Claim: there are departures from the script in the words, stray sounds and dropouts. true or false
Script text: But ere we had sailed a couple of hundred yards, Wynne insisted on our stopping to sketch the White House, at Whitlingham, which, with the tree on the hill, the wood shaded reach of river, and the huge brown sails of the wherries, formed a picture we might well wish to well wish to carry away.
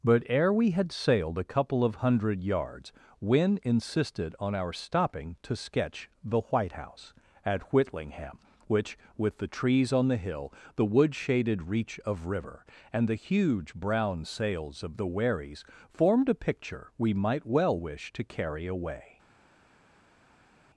true